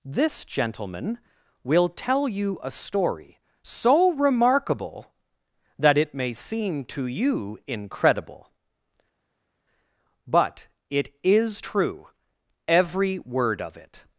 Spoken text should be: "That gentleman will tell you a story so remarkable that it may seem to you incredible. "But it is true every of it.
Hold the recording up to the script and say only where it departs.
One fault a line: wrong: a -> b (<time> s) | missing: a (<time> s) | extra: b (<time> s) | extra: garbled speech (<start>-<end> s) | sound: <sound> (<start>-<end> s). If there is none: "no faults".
wrong: That -> This (0.0 s)
extra: word (13.2 s)